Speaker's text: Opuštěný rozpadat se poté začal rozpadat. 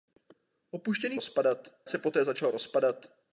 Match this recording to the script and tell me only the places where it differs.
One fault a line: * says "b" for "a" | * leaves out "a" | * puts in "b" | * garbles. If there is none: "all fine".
all fine